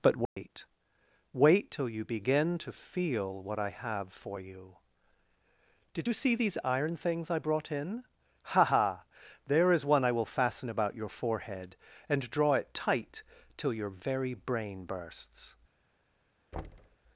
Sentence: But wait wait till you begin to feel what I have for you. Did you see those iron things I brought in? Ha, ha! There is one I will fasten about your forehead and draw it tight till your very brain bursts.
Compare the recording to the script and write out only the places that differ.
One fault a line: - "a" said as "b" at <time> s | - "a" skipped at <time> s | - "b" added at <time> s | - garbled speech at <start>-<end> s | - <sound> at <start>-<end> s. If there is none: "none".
- dropout at 0.3-0.4 s
- "those" said as "these" at 6.3 s
- thud at 16.5-17.0 s